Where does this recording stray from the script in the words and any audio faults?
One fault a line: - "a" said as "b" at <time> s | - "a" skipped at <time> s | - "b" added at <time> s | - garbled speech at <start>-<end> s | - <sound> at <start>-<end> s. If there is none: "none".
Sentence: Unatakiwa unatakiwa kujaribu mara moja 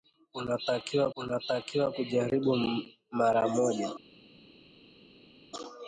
none